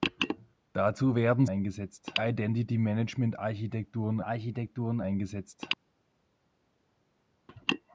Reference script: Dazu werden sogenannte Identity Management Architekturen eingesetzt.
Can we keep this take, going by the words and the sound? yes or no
no